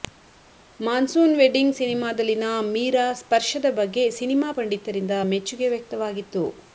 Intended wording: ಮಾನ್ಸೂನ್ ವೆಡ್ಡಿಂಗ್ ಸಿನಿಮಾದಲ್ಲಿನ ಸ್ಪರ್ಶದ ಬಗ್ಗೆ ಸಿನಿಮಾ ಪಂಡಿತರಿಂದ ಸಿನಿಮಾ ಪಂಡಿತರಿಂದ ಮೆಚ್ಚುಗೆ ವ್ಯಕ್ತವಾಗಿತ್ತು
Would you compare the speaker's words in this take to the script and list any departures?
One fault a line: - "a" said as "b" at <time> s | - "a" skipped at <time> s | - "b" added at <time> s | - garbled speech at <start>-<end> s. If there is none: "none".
- "ಮೀರಾ" added at 2.7 s
- "ಸಿನಿಮಾ ಪಂಡಿತರಿಂದ" skipped at 5.2 s